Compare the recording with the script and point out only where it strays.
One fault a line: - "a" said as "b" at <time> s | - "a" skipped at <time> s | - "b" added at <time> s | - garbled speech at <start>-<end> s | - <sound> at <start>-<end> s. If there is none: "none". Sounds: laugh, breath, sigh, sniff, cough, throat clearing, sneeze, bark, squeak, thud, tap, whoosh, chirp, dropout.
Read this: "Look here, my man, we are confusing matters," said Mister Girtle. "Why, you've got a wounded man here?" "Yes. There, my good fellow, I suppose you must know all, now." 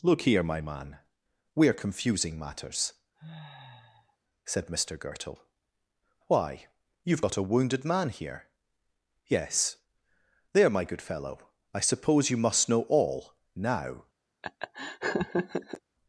- sniff at 3.1-4.2 s
- laugh at 14.4-15.8 s